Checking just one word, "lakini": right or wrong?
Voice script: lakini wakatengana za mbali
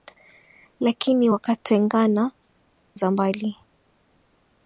right